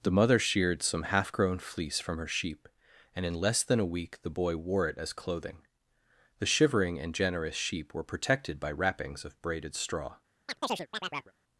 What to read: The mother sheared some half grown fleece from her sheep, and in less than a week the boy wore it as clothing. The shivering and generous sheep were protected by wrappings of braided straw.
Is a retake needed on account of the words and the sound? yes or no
yes